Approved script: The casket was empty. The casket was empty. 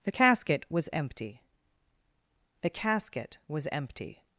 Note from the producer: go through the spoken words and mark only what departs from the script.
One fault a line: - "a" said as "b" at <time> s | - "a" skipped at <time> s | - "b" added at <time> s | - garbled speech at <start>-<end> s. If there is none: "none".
none